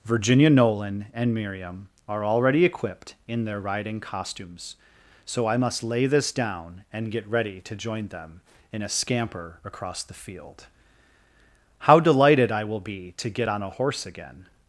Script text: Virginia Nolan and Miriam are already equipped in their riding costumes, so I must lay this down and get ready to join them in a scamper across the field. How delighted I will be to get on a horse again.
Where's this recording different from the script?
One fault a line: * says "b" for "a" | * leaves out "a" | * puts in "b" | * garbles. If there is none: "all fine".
all fine